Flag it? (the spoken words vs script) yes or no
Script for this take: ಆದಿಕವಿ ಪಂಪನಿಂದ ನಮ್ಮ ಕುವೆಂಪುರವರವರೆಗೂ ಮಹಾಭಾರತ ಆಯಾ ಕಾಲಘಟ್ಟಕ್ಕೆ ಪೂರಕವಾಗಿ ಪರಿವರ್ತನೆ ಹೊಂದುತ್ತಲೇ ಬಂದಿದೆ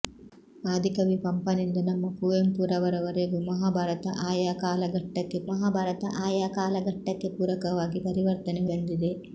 yes